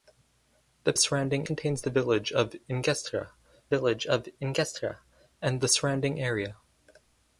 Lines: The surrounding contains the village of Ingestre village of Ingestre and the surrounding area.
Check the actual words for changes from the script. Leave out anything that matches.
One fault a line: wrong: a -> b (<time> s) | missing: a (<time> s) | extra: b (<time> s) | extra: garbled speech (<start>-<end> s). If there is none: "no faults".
no faults